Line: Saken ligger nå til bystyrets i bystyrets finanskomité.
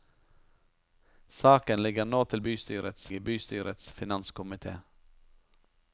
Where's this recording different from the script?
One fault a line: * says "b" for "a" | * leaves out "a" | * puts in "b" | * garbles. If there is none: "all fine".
all fine